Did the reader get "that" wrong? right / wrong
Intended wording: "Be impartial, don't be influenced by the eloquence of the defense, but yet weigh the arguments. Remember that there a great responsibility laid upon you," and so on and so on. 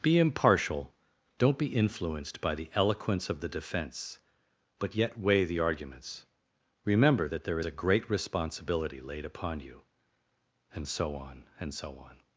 right